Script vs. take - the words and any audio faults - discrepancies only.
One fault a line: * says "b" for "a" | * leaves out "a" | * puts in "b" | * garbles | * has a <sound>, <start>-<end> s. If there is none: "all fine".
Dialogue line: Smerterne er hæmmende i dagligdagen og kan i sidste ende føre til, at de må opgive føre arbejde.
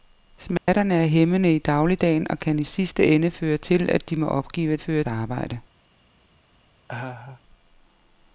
* has a dropout, 0.6-0.7 s
* has a laugh, 6.9-7.4 s